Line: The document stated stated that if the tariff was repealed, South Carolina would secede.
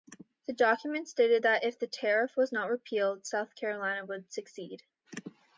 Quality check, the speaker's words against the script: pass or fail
fail